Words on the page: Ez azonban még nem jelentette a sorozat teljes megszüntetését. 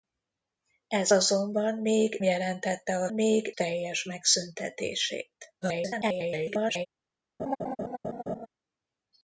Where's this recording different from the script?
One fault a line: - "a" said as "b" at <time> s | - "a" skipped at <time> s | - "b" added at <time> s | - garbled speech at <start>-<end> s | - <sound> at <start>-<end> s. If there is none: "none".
- "nem" skipped at 2.2 s
- "sorozat" said as "még" at 3.1 s
- garbled speech at 5.6-6.9 s
- laugh at 7.4-8.5 s